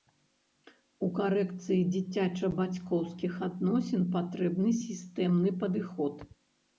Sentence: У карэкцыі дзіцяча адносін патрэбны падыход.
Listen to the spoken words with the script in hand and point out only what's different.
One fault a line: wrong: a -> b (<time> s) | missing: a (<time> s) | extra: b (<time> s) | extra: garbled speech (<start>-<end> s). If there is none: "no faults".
extra: бацькоўскіх (2.6 s)
extra: сістэмны (4.8 s)